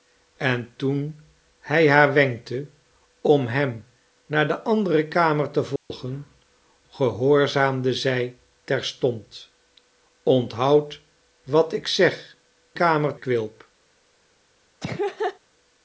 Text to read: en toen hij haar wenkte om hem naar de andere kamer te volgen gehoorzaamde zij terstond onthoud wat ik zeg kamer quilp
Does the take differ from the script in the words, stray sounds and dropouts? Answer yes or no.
yes